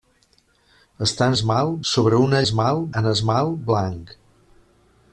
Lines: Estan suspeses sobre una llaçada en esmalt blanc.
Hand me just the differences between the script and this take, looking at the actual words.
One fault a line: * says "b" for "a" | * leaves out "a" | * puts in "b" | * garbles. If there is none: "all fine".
* says "esmalt" for "suspeses"
* says "esmalt" for "llaçada"